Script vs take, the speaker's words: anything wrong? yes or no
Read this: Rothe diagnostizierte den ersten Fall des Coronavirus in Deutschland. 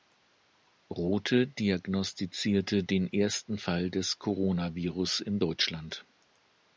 no